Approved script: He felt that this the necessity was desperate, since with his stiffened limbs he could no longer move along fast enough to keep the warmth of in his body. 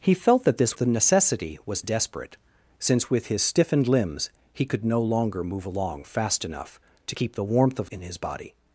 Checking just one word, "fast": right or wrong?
right